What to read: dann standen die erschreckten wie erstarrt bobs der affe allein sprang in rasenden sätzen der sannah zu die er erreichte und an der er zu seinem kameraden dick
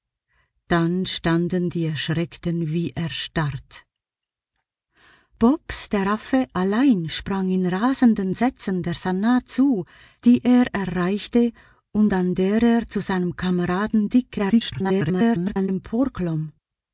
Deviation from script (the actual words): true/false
true